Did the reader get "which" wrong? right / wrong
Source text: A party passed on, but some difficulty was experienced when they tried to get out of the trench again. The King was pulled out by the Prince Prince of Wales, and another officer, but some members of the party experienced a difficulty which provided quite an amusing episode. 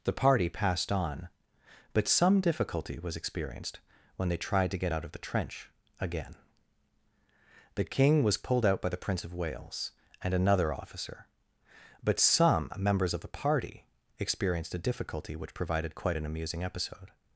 right